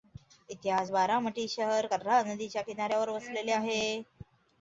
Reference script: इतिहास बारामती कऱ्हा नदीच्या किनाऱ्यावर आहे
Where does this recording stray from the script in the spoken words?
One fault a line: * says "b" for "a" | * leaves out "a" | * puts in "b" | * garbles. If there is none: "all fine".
* puts in "शहर"
* puts in "वसलेले"